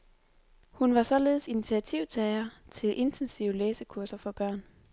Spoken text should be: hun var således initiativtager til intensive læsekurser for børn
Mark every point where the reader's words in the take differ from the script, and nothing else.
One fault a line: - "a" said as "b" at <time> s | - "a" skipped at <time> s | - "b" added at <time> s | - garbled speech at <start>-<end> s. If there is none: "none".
none